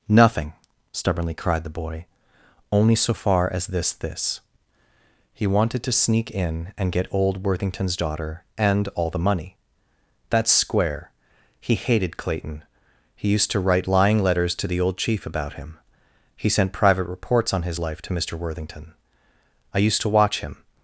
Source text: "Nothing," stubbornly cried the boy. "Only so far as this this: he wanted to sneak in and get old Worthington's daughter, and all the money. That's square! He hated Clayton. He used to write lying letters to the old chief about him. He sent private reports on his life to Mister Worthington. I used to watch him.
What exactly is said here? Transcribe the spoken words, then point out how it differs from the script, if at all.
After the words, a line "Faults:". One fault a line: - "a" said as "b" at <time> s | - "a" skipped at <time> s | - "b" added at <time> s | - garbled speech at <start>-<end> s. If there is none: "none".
"Nothing," stubbornly cried the boy. "Only so far as this this: he wanted to sneak in and get old Worthington's daughter, and all the money. That's square! He hated Clayton. He used to write lying letters to the old chief about him. He sent private reports on his life to Mister Worthington. I used to watch him.
Faults:
none